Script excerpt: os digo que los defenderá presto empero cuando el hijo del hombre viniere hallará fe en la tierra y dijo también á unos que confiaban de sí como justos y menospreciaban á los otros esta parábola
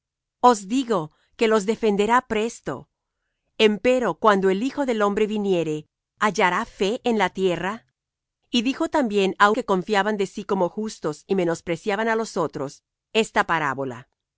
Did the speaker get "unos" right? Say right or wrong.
wrong